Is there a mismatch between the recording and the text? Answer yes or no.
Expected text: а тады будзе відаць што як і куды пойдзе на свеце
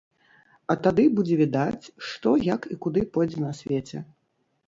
no